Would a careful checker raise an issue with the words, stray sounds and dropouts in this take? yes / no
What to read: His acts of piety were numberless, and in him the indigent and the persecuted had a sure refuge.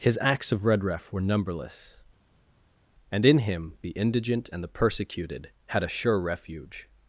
yes